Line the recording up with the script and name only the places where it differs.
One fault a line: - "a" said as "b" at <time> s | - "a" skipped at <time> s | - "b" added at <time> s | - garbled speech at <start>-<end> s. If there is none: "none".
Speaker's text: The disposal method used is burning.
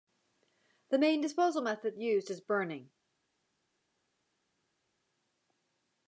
- "main" added at 1.0 s